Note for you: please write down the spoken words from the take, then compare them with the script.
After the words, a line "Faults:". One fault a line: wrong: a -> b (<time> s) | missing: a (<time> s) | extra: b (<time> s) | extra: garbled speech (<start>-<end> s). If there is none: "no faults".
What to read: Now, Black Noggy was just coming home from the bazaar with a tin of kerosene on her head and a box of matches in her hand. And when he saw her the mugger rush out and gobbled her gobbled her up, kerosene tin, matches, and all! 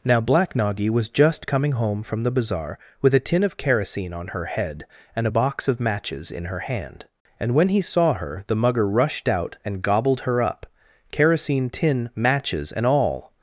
Now, Black Noggy was just coming home from the bazaar with a tin of kerosene on her head and a box of matches in her hand. And when he saw her the mugger rushed out and gobbled her up, kerosene tin, matches, and all!
Faults:
wrong: rush -> rushed (8.9 s)
missing: gobbled her (10.4 s)